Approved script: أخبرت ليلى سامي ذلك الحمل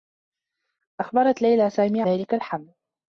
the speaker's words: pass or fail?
pass